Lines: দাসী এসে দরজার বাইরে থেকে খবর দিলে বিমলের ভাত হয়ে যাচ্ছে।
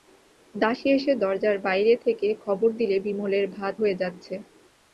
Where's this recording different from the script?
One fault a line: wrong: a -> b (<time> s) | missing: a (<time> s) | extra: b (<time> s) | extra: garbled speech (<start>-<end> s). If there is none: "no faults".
no faults